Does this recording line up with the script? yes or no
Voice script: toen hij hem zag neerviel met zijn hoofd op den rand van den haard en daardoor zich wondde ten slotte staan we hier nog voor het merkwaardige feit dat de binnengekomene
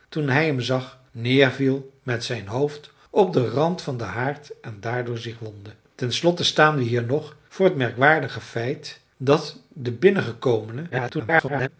no